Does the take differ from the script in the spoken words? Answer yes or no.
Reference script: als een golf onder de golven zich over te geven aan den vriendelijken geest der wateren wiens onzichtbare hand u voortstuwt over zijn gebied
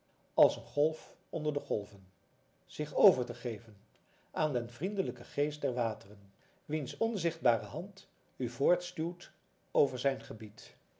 no